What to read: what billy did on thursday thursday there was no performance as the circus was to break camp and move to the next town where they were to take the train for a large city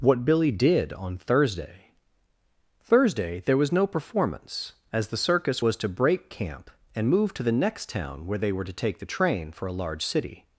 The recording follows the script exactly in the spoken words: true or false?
true